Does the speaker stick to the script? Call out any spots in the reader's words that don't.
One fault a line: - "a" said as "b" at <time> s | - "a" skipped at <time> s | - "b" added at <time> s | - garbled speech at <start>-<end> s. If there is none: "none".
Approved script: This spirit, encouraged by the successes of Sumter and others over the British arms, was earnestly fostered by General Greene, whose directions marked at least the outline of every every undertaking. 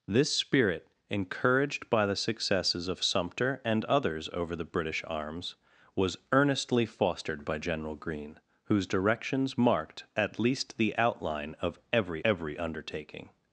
none